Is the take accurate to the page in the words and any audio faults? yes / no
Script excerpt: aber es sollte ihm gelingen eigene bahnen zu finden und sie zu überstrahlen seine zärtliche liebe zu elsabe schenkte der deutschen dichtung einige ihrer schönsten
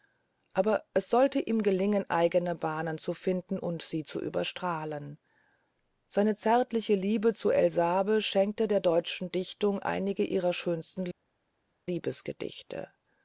yes